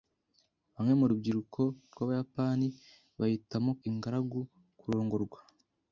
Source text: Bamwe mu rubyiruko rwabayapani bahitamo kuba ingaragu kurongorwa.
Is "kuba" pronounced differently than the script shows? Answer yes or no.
yes